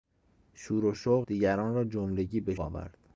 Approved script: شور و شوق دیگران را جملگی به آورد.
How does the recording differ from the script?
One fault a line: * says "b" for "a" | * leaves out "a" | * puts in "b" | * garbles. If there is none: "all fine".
all fine